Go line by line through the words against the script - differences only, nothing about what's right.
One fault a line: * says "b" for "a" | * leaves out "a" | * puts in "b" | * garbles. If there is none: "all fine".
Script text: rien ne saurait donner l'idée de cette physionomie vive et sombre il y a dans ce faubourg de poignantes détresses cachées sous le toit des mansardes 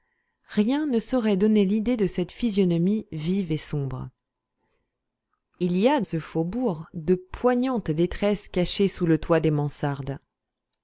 * leaves out "dans"